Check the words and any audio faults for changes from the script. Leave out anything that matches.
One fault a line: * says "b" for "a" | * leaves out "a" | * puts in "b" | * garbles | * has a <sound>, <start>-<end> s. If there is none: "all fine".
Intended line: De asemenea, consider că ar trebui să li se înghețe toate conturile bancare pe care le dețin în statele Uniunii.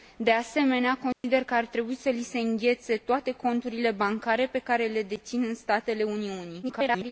* has a dropout, 1.1-1.2 s
* garbles